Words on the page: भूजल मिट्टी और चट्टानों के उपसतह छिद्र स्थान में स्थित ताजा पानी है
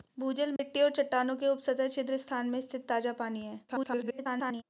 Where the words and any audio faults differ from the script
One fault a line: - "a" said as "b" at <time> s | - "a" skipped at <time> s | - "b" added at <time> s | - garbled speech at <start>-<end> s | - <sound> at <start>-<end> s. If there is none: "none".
- dropout at 0.6-0.6 s
- garbled speech at 3.7-4.6 s